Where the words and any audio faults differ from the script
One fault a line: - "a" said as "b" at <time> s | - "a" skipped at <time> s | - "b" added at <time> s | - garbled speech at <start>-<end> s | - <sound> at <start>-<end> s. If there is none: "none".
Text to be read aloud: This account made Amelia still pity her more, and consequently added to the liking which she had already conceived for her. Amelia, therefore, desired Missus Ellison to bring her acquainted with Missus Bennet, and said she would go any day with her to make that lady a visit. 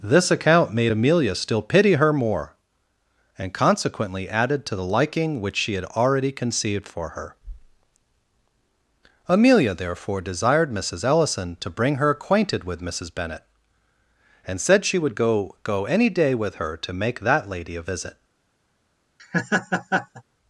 - "go" added at 15.6 s
- laugh at 19.2-20.2 s